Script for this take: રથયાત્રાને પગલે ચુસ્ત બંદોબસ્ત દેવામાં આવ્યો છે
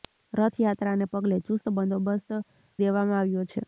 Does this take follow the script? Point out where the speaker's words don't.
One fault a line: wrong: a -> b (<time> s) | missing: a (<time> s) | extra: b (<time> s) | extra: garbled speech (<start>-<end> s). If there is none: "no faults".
no faults